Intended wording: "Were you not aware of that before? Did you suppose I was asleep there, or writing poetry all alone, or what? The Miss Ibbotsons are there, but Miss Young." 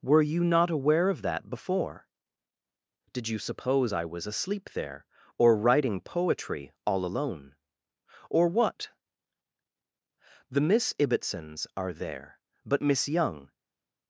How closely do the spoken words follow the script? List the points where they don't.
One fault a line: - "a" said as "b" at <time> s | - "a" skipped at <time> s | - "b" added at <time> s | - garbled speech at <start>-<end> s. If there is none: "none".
none